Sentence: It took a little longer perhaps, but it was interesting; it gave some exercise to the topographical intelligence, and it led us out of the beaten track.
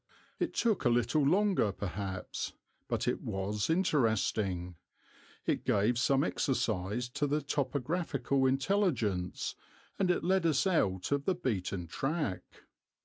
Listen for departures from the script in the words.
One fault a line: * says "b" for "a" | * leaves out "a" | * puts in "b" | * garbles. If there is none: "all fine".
all fine